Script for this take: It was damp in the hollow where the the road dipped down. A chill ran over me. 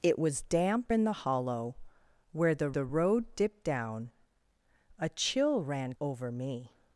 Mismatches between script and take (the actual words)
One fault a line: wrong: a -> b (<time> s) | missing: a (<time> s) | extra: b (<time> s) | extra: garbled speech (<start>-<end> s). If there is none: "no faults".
no faults